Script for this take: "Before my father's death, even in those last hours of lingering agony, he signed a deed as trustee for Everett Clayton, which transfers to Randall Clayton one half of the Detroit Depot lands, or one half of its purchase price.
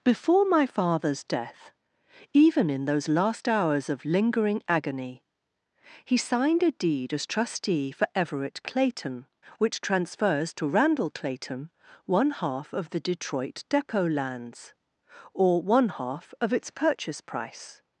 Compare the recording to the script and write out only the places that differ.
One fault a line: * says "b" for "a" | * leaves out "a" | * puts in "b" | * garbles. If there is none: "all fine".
all fine